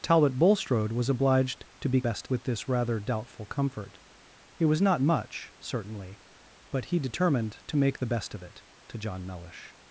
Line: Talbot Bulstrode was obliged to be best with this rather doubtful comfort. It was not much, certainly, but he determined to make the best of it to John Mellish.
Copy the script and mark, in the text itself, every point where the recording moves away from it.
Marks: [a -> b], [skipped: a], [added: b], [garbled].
Talbot Bulstrode was obliged to be best with this rather doubtful comfort. It was not much, certainly, but he determined to make the best of it to John Mellish.